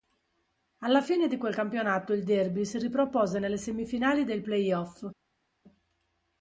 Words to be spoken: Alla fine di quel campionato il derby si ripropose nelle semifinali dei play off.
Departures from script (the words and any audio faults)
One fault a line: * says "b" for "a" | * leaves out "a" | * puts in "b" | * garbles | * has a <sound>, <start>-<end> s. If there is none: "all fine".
all fine